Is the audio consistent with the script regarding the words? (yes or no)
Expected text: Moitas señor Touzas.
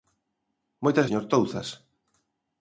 yes